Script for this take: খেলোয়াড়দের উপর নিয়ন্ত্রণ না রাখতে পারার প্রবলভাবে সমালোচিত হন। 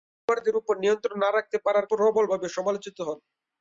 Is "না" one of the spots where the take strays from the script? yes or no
no